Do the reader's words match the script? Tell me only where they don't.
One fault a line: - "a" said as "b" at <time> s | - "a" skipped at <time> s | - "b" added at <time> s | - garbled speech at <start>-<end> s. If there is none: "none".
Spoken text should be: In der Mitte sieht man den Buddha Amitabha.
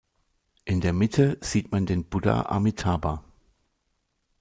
none